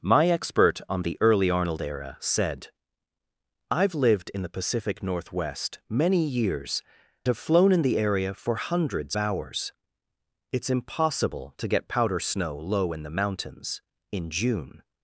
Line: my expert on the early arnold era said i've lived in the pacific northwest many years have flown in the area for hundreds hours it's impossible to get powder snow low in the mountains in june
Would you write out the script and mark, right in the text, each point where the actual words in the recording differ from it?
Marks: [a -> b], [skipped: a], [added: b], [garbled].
my expert on the early arnold era said i've lived in the pacific northwest many years have flown in the area for hundreds hours it's impossible to get powder snow low in the mountains in june